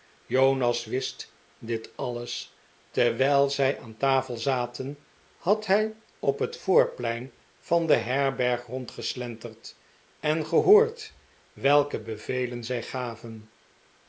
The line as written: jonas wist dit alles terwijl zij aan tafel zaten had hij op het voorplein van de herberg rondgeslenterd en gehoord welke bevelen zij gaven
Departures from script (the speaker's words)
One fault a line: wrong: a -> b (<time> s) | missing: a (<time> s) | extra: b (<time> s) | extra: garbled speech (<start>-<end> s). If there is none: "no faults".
no faults